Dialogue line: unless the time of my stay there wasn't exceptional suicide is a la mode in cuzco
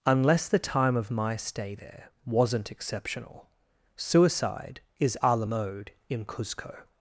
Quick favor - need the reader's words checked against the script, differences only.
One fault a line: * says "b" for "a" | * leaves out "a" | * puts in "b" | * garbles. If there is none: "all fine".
all fine